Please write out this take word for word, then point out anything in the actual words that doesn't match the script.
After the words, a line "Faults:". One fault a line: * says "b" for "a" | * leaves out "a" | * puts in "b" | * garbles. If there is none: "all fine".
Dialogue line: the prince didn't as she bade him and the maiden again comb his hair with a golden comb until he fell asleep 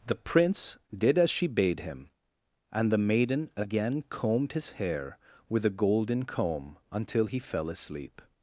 the prince did as she bade him and the maiden again combed his hair with a golden comb until he fell asleep
Faults:
* says "did" for "didn't"
* says "combed" for "comb"